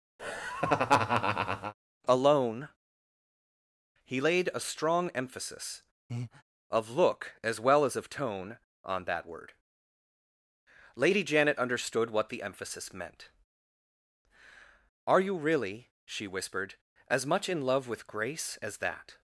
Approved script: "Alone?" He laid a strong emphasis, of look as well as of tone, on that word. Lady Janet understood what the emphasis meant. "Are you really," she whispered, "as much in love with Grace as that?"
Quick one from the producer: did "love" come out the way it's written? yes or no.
yes